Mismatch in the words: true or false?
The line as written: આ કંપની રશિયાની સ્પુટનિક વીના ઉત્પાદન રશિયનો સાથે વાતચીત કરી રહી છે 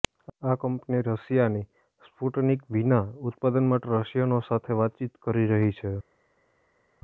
true